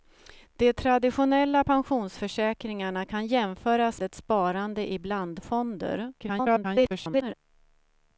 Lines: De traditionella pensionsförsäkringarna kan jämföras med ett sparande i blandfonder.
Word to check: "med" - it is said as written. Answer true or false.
false